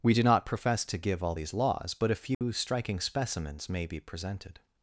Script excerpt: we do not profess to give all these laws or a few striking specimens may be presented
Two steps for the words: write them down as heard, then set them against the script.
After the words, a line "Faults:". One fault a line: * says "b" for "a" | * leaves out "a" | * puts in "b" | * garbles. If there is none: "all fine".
we do not profess to give all these laws but a few striking specimens may be presented
Faults:
* says "but" for "or"